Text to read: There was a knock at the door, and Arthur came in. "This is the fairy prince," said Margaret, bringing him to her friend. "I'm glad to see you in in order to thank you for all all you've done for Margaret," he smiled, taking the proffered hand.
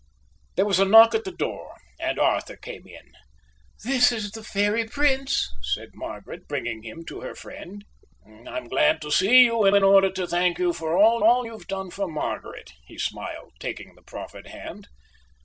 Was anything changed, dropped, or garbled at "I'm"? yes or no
no